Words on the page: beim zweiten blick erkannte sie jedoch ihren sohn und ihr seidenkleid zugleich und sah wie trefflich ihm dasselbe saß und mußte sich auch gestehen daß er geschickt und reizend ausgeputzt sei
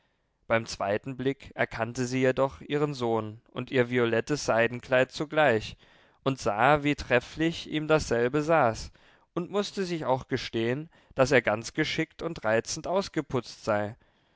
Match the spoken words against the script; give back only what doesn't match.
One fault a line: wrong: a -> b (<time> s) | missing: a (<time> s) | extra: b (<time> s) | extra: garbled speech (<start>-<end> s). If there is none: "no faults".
extra: violettes (3.9 s)
extra: ganz (11.4 s)